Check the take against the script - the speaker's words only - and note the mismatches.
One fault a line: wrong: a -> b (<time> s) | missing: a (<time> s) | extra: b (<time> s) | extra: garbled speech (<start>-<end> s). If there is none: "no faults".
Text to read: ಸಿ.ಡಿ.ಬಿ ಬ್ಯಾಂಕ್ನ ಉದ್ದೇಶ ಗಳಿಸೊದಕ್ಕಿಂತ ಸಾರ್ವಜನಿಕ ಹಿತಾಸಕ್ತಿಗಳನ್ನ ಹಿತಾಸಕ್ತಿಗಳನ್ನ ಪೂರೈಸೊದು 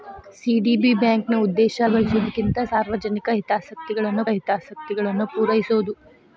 no faults